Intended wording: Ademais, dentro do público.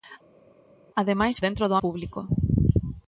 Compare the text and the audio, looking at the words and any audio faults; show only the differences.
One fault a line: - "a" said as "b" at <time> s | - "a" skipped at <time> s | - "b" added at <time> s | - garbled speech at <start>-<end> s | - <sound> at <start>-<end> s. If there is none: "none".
none